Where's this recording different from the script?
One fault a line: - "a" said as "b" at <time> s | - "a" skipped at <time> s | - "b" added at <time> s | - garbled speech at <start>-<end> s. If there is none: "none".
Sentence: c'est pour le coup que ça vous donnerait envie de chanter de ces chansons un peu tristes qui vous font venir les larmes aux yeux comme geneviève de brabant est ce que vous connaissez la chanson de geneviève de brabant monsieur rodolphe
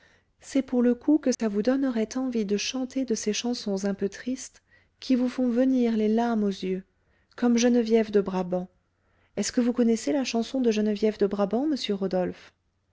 none